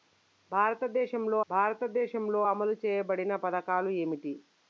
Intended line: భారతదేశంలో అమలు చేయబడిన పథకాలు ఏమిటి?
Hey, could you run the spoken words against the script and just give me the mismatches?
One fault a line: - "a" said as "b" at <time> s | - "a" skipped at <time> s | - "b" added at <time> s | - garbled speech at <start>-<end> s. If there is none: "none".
- "భారతదేశంలో" added at 1.5 s